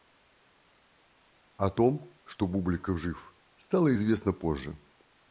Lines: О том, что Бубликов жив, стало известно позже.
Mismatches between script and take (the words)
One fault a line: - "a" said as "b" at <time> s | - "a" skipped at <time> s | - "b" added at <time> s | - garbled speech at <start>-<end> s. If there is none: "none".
none